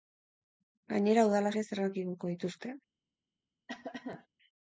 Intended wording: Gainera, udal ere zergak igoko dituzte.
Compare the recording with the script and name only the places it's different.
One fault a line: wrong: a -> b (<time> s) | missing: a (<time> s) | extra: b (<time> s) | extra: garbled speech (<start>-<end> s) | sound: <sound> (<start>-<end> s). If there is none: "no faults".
sound: cough (3.7-4.3 s)